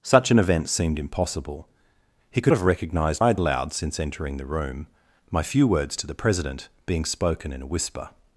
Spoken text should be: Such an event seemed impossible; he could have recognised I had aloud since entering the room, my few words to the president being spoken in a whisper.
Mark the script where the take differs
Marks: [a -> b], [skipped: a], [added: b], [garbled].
Such an event seemed impossible; he could have recognised I had aloud since entering the room, my few words to the president being spoken in a whisper.